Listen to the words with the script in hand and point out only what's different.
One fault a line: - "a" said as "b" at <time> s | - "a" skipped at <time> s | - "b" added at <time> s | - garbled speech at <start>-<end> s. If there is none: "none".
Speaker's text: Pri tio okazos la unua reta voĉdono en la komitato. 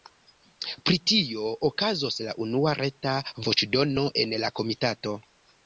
none